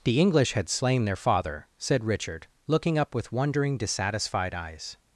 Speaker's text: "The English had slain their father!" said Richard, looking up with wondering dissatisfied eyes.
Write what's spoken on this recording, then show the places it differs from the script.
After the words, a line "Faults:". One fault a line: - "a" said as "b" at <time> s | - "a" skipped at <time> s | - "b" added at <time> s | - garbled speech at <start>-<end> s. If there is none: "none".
"The English had slain their father!" said Richard, looking up with wondering dissatisfied eyes.
Faults:
none